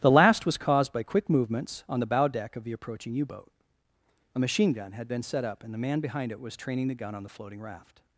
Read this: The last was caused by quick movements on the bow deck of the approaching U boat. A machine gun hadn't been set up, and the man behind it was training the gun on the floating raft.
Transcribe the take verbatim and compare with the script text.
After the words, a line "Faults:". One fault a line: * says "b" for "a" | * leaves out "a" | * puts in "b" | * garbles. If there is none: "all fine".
The last was caused by quick movements on the bow deck of the approaching U boat. A machine gun had been set up, and the man behind it was training the gun on the floating raft.
Faults:
* says "had" for "hadn't"